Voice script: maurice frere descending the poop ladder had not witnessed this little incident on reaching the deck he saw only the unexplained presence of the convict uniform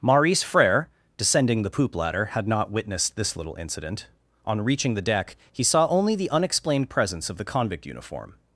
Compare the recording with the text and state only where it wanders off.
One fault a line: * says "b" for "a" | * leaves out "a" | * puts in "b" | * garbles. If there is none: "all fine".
all fine